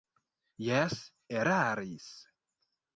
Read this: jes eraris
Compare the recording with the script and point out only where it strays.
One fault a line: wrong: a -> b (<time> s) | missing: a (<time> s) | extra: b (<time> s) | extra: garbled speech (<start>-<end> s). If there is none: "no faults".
no faults